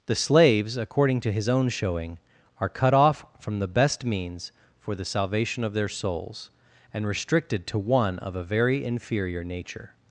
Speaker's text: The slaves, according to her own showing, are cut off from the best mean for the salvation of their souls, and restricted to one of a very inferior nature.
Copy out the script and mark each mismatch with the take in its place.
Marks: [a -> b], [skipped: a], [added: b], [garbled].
The slaves, according to [her -> his] own showing, are cut off from the best [mean -> means] for the salvation of their souls, and restricted to one of a very inferior nature.